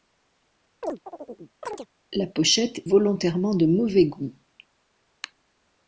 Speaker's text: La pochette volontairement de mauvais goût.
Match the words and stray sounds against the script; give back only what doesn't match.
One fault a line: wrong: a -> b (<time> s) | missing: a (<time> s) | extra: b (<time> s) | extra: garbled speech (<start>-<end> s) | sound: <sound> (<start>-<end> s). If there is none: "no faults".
sound: chirp (0.8-1.9 s)